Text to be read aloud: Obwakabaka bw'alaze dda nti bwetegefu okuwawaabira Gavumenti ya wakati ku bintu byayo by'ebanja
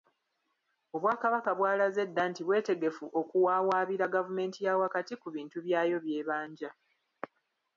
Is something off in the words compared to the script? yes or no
no